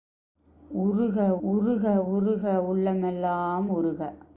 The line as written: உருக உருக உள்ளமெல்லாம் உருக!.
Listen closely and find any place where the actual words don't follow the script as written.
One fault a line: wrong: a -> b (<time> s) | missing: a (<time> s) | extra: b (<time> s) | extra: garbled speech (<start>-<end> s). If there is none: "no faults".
extra: உருக (2.1 s)